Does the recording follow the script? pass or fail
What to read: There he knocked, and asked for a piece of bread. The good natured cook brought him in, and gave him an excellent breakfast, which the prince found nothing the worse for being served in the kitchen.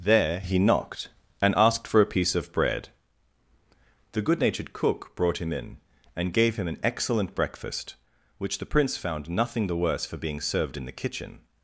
pass